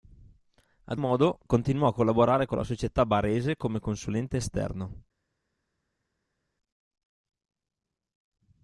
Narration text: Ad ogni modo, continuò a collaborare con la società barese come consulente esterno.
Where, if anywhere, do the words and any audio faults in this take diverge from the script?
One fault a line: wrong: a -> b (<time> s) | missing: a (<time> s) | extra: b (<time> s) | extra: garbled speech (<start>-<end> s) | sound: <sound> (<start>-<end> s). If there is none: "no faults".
missing: ogni (1.0 s)